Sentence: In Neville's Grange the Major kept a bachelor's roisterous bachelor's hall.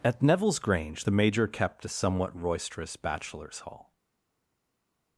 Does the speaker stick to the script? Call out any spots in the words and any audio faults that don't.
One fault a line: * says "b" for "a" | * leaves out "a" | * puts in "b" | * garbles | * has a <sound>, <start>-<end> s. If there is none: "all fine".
* says "At" for "In"
* says "somewhat" for "bachelor's"